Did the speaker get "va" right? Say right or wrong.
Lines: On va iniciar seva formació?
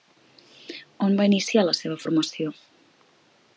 right